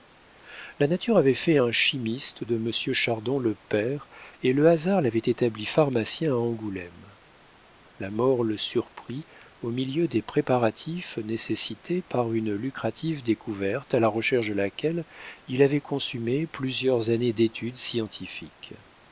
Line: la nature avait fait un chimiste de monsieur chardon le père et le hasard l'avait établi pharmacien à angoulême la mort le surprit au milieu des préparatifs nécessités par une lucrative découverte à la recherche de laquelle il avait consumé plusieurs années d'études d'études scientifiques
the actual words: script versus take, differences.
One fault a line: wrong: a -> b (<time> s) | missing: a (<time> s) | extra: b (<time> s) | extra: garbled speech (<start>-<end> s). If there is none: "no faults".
missing: d'études (17.8 s)